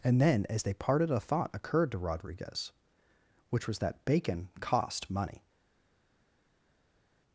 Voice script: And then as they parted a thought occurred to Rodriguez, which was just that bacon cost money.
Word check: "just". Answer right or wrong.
wrong